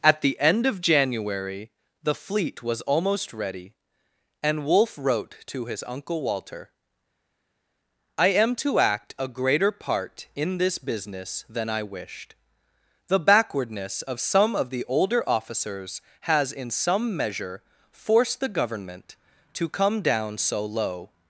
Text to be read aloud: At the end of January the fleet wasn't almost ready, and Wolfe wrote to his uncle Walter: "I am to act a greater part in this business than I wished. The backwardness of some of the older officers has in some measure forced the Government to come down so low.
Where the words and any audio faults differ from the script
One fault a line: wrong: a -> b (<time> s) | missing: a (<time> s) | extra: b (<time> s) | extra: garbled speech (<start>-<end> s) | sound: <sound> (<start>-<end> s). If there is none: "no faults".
wrong: wasn't -> was (2.6 s)